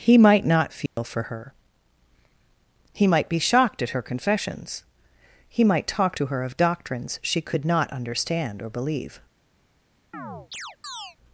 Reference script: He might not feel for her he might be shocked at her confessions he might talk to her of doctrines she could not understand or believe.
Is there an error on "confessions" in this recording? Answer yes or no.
no